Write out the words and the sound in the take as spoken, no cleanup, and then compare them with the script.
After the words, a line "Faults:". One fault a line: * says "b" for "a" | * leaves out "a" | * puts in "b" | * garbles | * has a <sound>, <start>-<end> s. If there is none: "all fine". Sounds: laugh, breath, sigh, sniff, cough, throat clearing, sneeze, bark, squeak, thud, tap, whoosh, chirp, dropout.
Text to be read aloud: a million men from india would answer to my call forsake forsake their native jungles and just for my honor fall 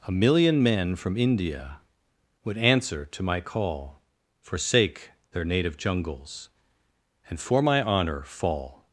a million men from india would answer to my call forsake their native jungles and for my honor fall
Faults:
* leaves out "forsake"
* leaves out "just"